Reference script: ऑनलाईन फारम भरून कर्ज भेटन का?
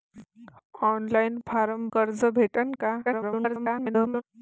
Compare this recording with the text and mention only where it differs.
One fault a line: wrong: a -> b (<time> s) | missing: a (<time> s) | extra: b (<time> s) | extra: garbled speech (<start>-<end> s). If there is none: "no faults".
missing: भरून (1.9 s)
extra: garbled speech (3.0-4.2 s)